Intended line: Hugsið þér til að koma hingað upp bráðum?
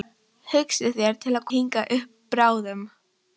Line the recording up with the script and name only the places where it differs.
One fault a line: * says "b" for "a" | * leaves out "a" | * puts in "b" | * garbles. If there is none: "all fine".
* leaves out "koma"